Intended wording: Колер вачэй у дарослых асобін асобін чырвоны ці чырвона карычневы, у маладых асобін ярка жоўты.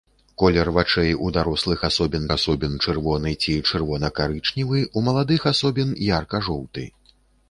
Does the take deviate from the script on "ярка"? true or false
false